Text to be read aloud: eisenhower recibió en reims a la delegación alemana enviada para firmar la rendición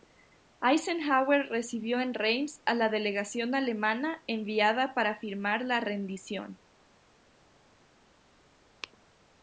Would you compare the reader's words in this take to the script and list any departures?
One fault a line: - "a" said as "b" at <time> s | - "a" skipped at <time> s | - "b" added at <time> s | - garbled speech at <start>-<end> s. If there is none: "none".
none